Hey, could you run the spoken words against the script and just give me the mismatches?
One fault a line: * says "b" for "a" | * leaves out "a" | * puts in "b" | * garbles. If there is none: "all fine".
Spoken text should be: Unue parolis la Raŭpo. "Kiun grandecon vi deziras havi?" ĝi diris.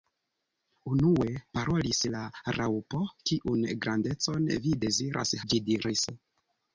* leaves out "havi"